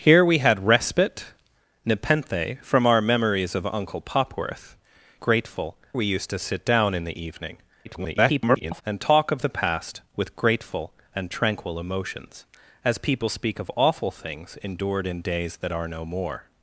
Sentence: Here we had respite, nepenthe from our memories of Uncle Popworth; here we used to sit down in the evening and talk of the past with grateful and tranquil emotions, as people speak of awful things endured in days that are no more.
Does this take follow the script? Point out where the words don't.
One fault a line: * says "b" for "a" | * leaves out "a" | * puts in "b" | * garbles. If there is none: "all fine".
* says "grateful" for "here"
* garbles